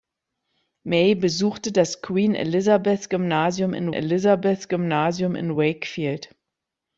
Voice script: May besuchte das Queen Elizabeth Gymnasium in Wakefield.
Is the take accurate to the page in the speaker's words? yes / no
no